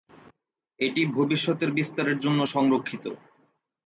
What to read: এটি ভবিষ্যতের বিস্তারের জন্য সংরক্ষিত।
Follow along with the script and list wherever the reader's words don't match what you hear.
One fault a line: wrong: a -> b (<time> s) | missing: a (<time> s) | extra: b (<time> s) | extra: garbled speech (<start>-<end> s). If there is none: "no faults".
no faults